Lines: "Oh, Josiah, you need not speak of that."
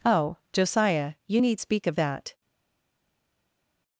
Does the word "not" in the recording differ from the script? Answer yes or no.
yes